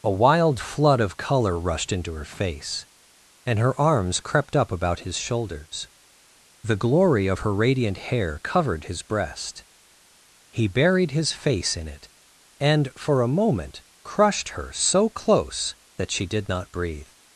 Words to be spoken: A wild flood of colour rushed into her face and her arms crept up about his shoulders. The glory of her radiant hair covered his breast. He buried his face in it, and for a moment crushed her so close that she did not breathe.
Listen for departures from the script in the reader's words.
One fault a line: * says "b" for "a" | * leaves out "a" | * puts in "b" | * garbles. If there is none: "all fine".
all fine